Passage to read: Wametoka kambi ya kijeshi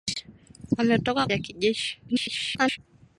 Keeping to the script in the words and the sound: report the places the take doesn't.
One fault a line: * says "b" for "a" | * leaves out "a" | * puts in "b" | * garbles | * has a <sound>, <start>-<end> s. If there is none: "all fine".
* leaves out "kambi"
* garbles